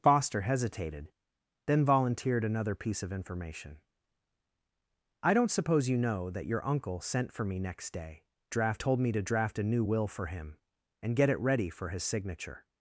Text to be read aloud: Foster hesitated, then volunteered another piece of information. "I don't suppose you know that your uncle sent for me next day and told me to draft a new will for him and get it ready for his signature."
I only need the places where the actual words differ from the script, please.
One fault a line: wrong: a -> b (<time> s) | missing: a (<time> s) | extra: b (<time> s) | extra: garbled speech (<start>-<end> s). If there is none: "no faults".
wrong: and -> draft (8.5 s)